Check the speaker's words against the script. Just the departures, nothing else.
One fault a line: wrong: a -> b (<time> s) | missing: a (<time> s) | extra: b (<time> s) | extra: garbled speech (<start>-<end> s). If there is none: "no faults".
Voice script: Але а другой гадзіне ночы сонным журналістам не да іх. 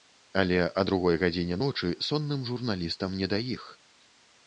no faults